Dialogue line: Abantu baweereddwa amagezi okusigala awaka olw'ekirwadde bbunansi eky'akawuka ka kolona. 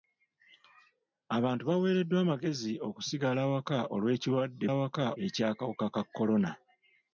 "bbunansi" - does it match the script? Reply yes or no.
no